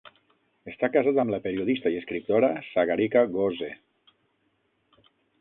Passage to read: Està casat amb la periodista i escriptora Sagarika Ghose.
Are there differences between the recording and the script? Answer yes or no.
no